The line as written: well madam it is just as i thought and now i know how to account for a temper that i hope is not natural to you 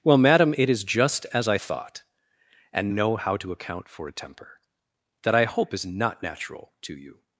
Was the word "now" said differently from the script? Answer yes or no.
yes